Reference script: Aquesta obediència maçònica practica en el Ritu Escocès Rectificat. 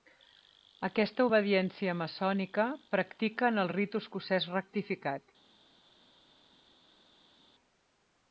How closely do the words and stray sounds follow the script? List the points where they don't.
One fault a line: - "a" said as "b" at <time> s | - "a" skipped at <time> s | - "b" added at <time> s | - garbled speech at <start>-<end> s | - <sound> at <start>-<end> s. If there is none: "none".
none